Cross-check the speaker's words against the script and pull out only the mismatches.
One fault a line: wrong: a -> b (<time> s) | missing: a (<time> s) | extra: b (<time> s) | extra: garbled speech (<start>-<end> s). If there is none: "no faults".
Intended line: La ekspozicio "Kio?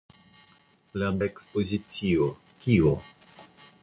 no faults